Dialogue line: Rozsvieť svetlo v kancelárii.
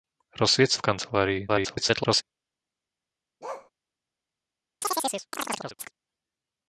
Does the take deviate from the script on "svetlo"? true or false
true